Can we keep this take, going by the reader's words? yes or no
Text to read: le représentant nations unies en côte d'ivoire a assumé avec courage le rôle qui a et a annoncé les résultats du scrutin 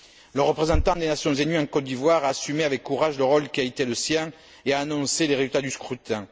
no